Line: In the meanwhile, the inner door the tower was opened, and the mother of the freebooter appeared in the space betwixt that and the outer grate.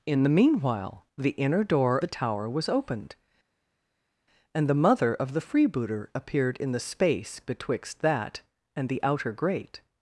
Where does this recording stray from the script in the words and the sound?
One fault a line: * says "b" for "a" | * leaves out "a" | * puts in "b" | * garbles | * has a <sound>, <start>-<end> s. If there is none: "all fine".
all fine